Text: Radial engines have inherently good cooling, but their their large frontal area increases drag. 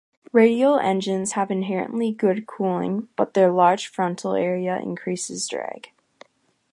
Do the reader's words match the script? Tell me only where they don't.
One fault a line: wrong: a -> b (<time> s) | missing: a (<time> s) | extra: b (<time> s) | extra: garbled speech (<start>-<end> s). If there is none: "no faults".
missing: their (3.5 s)